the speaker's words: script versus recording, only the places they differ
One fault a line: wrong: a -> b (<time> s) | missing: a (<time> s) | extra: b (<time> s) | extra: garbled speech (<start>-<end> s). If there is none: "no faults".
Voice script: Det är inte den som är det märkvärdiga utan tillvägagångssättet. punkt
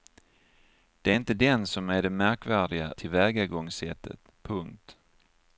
missing: utan (2.9 s)